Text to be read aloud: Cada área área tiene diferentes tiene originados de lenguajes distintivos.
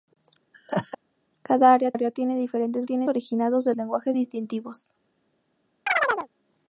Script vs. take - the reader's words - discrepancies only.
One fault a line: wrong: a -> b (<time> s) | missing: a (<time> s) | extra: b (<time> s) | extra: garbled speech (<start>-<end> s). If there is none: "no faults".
no faults